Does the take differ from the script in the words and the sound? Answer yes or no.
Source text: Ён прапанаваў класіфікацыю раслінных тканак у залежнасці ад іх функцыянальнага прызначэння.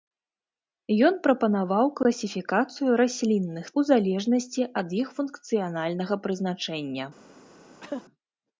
yes